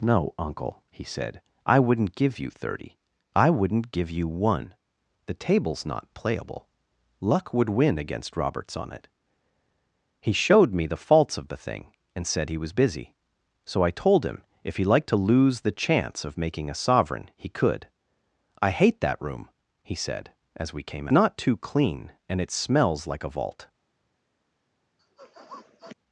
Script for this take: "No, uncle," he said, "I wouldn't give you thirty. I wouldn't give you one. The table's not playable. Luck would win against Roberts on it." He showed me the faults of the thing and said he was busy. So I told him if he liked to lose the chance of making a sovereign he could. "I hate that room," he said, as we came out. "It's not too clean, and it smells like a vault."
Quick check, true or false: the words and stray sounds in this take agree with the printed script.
false